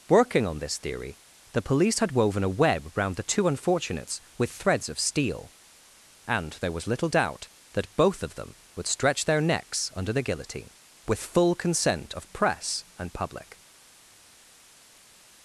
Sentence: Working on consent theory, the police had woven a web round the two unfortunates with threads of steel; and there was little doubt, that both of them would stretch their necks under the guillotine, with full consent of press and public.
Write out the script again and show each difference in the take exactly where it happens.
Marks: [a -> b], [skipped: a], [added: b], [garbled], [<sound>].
Working on [consent -> this] theory, the police had woven a web round the two unfortunates with threads of steel; and there was little doubt, that both of them would stretch their necks under the guillotine, with full consent of press and public.